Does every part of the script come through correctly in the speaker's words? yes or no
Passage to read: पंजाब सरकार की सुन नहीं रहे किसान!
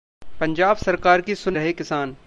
no